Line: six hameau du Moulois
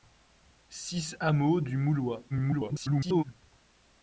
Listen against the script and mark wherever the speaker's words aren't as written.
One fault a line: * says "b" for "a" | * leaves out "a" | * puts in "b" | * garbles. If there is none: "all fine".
* garbles